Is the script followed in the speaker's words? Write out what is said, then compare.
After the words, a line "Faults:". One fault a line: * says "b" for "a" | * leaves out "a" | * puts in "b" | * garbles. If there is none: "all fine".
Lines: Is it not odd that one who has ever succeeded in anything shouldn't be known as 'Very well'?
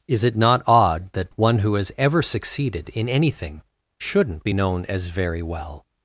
Is it not odd that one who has ever succeeded in anything shouldn't be known as 'Very well'?
Faults:
all fine